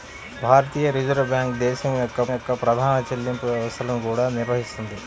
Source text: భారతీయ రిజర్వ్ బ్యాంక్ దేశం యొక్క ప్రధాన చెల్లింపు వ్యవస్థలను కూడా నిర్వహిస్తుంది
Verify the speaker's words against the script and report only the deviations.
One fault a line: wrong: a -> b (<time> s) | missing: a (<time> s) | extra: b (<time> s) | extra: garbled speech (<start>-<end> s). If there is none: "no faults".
extra: యొక్క (2.3 s)